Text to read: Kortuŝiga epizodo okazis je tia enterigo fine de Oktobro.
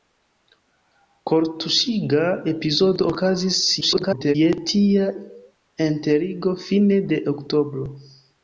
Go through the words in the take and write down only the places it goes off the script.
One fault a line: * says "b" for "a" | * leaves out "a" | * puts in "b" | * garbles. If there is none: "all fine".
* garbles